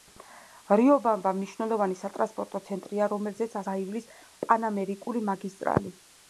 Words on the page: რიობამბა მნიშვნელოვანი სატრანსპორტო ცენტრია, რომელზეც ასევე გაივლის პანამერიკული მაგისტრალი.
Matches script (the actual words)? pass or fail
fail